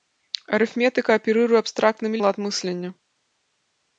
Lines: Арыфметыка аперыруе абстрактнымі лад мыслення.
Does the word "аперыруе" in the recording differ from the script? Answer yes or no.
no